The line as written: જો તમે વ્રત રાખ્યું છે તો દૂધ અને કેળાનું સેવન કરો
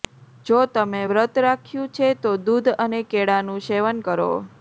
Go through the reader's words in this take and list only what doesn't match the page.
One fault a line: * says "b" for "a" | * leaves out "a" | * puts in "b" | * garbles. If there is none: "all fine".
all fine